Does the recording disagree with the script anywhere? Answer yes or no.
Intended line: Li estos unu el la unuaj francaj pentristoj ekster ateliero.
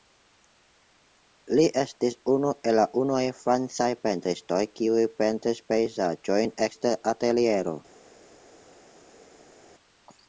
yes